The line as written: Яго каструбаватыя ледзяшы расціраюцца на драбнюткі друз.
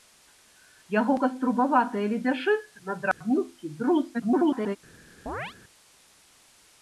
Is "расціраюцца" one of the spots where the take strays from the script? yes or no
yes